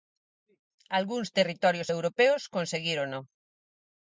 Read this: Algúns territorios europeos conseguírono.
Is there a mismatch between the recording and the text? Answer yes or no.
no